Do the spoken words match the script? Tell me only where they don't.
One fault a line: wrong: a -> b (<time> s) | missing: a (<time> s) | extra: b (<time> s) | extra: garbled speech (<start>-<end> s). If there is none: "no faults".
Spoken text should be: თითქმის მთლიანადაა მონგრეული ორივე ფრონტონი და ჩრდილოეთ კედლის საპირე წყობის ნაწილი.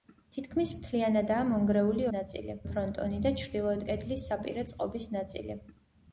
wrong: ორივე -> ნაწილი (2.2 s)